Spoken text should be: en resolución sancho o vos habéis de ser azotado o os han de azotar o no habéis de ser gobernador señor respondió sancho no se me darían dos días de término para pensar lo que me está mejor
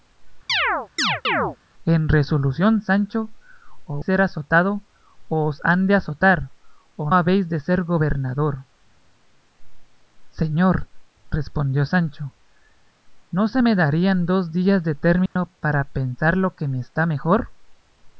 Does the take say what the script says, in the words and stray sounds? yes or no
no